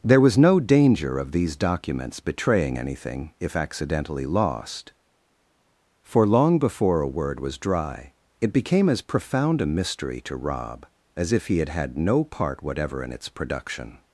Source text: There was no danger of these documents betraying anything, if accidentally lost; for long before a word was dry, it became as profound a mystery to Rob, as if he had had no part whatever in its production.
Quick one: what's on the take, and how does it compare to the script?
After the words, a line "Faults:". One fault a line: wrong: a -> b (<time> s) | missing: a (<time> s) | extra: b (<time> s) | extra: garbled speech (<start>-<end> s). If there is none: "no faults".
There was no danger of these documents betraying anything, if accidentally lost; for long before a word was dry, it became as profound a mystery to Rob, as if he had had no part whatever in its production.
Faults:
no faults